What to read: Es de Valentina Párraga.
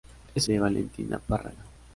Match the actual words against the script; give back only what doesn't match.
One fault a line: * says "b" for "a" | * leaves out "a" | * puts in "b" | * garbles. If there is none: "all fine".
all fine